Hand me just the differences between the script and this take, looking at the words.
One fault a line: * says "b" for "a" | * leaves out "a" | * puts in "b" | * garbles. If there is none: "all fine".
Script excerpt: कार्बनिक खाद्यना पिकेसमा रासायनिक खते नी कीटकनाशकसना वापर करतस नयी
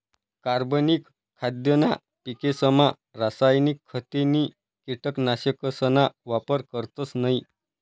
all fine